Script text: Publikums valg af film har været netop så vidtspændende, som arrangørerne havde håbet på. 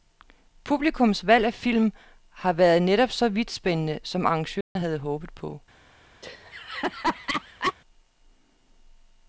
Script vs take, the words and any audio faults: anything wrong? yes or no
yes